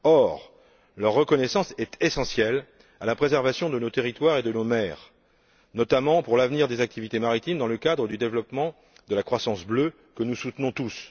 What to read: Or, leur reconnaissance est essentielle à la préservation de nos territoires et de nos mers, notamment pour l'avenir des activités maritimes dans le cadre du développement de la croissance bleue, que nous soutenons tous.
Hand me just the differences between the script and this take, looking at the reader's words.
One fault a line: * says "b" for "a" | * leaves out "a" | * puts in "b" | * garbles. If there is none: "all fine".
all fine